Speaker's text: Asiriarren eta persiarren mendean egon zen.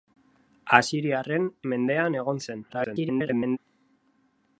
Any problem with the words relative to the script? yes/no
yes